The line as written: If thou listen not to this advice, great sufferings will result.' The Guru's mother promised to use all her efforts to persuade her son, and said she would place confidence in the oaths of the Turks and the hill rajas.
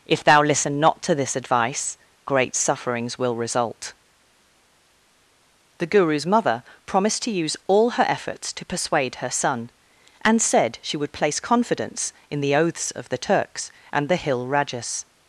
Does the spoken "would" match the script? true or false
true